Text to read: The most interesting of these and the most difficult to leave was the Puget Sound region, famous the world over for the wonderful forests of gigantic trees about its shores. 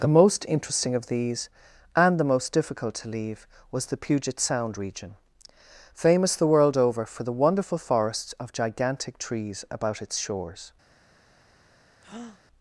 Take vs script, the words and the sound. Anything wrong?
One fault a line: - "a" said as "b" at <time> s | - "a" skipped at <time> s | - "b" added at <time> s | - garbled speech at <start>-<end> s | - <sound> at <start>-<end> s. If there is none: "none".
- breath at 12.0-12.4 s